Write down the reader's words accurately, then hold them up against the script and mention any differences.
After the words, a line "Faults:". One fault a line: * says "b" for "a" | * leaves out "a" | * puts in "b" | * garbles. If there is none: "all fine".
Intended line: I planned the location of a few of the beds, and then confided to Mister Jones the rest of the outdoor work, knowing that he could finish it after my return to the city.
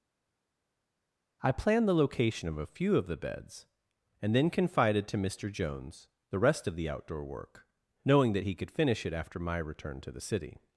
I planned the location of a few of the beds, and then confided to Mister Jones the rest of the outdoor work, knowing that he could finish it after my return to the city.
Faults:
all fine